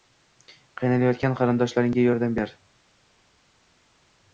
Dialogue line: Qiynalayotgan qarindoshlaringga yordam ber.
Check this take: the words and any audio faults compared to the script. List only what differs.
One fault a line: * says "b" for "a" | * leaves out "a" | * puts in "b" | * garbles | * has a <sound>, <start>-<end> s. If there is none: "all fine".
all fine